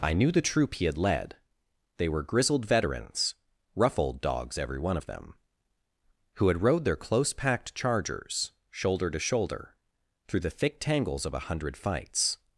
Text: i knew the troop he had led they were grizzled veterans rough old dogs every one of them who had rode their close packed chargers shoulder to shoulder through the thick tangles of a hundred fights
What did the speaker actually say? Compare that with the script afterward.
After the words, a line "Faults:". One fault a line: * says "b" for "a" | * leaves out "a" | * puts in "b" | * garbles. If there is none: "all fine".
i knew the troop he had led they were grizzled veterans rough old dogs every one of them who had rode their close packed chargers shoulder to shoulder through the thick tangles of a hundred fights
Faults:
all fine